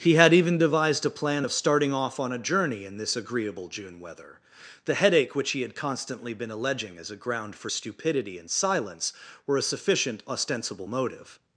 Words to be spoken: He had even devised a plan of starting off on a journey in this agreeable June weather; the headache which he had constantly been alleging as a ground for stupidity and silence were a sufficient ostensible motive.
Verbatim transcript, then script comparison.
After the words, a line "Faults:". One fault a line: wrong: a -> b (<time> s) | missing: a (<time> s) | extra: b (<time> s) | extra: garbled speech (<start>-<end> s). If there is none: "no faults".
He had even devised a plan of starting off on a journey in this agreeable June weather; the headache which he had constantly been alleging as a ground for stupidity and silence were a sufficient ostensible motive.
Faults:
no faults